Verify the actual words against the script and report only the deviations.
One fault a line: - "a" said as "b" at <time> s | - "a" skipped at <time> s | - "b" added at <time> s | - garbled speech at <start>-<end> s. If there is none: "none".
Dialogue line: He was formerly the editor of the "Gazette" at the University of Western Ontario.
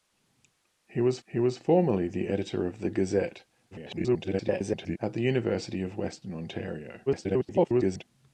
- "he was" added at 1.3 s
- garbled speech at 3.7-5.0 s
- garbled speech at 7.1-8.0 s